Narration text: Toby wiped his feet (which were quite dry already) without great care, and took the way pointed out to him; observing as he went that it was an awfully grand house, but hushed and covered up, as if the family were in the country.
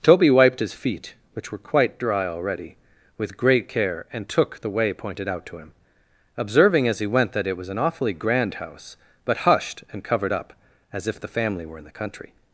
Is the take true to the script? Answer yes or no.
no